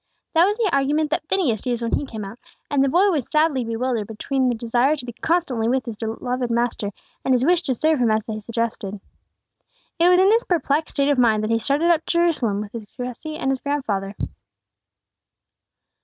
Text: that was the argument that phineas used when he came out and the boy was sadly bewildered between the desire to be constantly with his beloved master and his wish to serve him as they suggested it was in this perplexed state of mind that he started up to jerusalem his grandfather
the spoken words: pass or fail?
fail